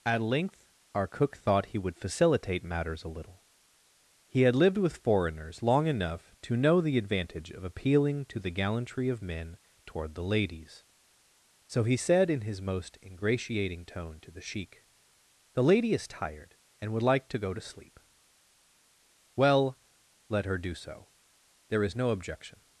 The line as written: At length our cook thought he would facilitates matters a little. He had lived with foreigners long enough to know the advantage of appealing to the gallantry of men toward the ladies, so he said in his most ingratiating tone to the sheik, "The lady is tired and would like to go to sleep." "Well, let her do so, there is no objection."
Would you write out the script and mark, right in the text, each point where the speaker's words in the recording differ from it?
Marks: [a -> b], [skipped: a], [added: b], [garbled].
At length our cook thought he would [facilitates -> facilitate] matters a little. He had lived with foreigners long enough to know the advantage of appealing to the gallantry of men toward the ladies, so he said in his most ingratiating tone to the sheik, "The lady is tired and would like to go to sleep." "Well, let her do so, there is no objection."